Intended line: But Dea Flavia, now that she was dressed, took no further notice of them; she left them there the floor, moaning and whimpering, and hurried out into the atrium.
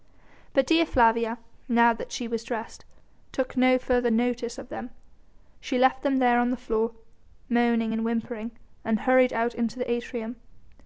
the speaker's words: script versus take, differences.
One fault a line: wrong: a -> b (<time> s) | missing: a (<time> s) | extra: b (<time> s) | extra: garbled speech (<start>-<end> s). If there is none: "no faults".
extra: on (6.4 s)